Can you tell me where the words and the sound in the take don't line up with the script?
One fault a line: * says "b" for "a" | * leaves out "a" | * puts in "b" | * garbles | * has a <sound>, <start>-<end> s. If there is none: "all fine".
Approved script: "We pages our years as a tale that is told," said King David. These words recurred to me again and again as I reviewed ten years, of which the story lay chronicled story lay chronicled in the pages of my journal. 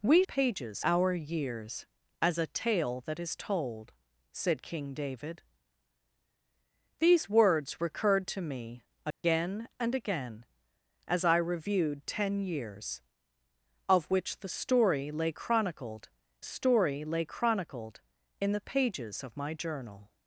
* has a dropout, 9.1-9.2 s